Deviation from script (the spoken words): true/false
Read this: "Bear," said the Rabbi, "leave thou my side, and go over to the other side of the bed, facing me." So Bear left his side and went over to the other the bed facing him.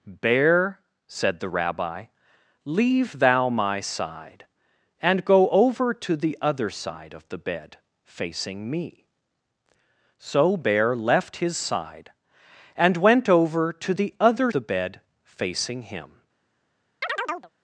false